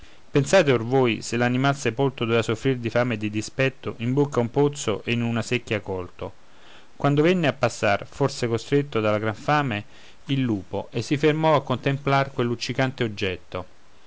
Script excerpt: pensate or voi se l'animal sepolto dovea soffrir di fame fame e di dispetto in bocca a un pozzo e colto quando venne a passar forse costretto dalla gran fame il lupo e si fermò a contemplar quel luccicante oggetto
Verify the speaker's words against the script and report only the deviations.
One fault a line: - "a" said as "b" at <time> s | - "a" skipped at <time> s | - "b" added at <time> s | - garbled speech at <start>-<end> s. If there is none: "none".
- "fame" skipped at 3.1 s
- "in una secchia" added at 5.1 s